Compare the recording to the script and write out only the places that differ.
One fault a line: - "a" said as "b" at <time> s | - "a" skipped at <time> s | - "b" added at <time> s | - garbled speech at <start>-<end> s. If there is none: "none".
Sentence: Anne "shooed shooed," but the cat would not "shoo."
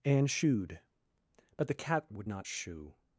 - "shooed" skipped at 0.8 s